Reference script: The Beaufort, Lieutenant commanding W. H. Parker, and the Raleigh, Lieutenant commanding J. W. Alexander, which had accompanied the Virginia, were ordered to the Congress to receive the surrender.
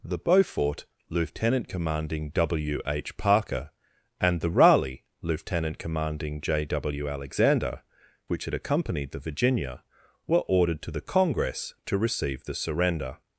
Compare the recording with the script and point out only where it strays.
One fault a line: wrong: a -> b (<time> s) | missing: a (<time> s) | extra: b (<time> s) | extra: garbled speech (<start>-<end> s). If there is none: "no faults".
no faults